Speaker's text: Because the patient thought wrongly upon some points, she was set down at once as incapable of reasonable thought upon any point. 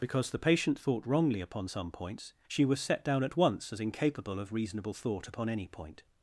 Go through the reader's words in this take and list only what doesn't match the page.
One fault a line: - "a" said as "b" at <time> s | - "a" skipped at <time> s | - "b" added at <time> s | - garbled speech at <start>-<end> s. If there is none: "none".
none